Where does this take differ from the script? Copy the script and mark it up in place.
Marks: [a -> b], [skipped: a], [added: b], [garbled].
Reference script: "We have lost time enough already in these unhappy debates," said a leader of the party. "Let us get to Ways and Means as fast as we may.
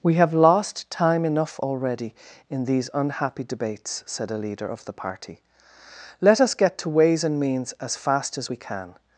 "We have lost time enough already in these unhappy debates," said a leader of the party. "Let us get to Ways and Means as fast as we [may. -> can]